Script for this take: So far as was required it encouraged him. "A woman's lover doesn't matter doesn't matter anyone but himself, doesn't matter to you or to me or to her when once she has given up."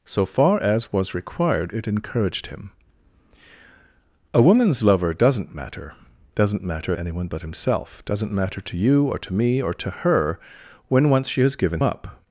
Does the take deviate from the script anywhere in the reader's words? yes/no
no